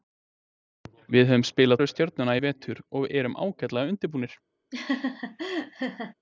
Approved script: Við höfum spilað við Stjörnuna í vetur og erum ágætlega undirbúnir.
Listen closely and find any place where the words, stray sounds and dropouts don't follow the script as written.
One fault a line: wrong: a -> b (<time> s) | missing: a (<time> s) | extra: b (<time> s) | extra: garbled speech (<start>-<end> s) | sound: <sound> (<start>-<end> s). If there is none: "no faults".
sound: laugh (4.7-6.1 s)